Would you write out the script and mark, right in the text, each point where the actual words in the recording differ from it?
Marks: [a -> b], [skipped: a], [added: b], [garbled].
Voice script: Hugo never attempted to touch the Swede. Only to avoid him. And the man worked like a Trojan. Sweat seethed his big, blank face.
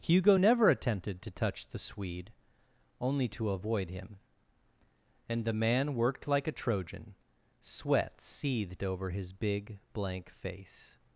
Hugo never attempted to touch the Swede. Only to avoid him. And the man worked like a Trojan. Sweat seethed [added: over] his big, blank face.